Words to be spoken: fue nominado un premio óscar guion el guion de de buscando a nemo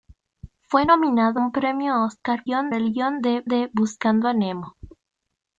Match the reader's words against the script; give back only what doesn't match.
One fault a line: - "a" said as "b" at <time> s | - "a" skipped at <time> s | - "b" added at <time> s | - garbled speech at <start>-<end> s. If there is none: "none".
none